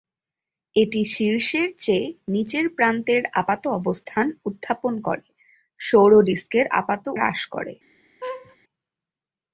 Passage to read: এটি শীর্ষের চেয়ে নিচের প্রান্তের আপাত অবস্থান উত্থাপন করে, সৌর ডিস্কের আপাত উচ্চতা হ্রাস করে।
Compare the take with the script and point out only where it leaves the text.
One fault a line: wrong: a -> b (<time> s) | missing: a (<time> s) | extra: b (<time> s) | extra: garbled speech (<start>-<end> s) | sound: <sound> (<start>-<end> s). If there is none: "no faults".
missing: উচ্চতা (7.0 s)
sound: laugh (8.2-8.6 s)